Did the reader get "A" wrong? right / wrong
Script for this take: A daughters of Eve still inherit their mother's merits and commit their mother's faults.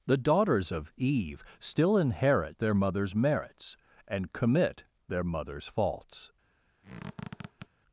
wrong